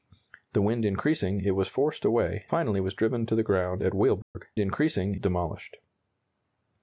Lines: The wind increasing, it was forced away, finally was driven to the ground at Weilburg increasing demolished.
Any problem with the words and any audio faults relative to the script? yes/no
yes